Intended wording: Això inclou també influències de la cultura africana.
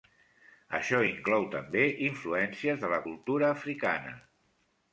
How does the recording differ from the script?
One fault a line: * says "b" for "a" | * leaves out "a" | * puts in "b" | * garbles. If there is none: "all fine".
all fine